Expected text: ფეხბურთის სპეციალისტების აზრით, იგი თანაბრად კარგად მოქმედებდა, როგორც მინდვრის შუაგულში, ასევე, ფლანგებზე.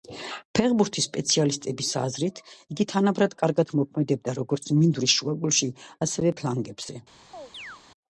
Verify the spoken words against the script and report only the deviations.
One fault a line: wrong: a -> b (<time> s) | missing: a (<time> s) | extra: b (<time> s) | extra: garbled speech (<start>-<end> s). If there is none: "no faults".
no faults